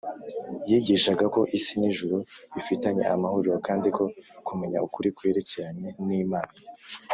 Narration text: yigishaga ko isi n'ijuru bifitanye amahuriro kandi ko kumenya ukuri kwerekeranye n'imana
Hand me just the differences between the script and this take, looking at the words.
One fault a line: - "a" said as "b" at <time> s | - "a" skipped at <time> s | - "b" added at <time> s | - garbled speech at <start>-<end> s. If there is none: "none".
none